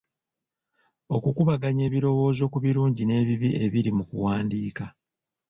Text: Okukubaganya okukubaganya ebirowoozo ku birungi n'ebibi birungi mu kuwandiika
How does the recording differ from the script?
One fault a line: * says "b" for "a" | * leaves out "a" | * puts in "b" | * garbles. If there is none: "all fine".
* leaves out "okukubaganya"
* says "ebiri" for "birungi"